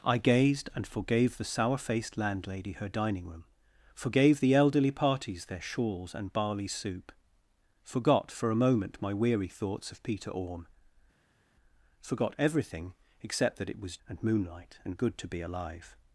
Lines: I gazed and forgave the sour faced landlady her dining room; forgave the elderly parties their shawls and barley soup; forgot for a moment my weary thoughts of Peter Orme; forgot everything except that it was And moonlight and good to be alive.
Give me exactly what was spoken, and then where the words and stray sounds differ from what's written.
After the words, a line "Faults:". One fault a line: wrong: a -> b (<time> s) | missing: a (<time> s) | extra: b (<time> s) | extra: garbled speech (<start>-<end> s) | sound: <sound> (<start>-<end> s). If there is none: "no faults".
I gazed and forgave the sour faced landlady her dining room; forgave the elderly parties their shawls and barley soup; forgot for a moment my weary thoughts of Peter Orme; forgot everything except that it was And moonlight and good to be alive.
Faults:
no faults